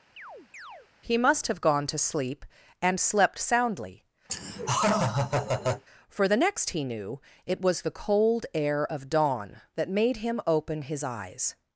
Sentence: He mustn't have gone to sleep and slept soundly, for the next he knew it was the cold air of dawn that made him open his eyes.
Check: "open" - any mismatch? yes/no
no